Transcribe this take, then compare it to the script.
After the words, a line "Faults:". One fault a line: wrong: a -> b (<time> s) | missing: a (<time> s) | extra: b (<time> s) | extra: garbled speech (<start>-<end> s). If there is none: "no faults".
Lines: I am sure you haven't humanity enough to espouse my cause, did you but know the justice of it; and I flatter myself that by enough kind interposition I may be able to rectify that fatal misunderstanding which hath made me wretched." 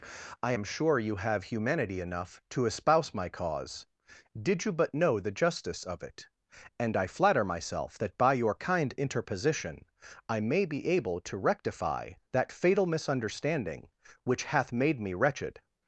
I am sure you have humanity enough to espouse my cause, did you but know the justice of it; and I flatter myself that by your kind interposition I may be able to rectify that fatal misunderstanding which hath made me wretched."
Faults:
wrong: haven't -> have (1.2 s)
wrong: enough -> your (8.3 s)